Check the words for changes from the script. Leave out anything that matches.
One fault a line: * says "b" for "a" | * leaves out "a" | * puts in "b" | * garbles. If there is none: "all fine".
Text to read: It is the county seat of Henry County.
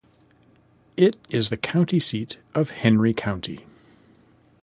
all fine